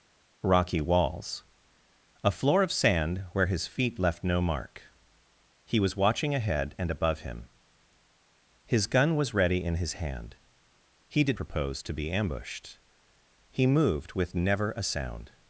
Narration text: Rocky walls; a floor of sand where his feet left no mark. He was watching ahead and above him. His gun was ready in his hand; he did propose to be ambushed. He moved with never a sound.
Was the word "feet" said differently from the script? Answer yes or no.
no